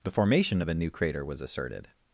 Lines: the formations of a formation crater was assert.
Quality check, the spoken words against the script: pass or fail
fail